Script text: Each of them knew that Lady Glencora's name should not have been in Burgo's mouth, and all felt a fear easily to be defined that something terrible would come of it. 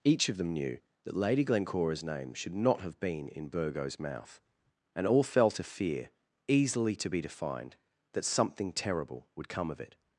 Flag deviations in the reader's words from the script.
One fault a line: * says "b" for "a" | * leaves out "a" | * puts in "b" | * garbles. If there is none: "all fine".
all fine